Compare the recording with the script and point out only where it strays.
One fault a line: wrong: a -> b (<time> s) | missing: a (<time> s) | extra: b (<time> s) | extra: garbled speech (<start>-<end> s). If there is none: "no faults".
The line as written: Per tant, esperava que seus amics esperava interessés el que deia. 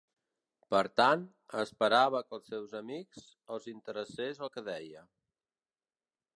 extra: als (2.4 s)
wrong: esperava -> els (3.6 s)